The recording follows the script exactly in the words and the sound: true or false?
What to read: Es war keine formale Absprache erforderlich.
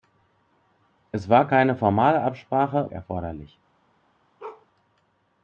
false